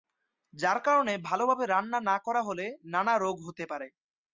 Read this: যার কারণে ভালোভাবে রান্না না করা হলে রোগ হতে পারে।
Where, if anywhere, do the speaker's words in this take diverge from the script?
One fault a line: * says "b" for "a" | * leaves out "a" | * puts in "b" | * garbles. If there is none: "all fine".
* puts in "নানা"